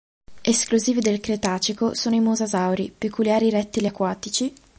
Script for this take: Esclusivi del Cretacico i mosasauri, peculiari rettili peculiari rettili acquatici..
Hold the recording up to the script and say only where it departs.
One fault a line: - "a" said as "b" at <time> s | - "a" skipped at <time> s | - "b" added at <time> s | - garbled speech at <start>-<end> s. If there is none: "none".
- "sono" added at 1.9 s
- "peculiari rettili" skipped at 3.9 s